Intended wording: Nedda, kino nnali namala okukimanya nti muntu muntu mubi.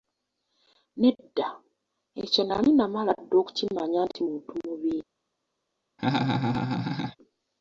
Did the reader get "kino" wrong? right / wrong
wrong